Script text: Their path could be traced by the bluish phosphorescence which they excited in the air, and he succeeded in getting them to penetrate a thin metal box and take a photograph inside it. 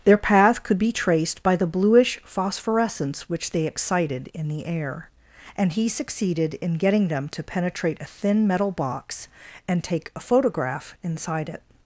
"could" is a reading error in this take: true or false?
false